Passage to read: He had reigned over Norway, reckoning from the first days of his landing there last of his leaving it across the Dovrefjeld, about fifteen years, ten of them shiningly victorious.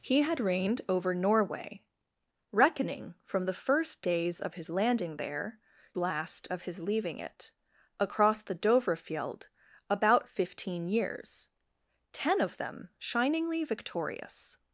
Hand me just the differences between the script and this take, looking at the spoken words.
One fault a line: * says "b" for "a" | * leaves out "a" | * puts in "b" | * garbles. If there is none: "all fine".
all fine